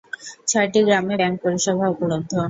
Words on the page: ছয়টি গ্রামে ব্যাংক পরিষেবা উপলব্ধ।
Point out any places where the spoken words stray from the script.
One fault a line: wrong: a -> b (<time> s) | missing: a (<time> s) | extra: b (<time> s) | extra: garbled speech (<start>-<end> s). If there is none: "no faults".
no faults